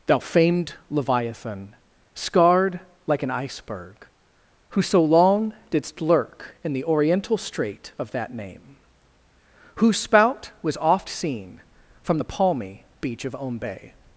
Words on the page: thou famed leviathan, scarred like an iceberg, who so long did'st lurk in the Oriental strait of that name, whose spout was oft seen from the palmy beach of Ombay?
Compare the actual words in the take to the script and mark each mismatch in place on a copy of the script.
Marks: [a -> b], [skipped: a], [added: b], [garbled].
thou famed leviathan, scarred like an iceberg, who so long did'st lurk in the Oriental strait of that name, whose spout was oft seen from the palmy beach of Ombay?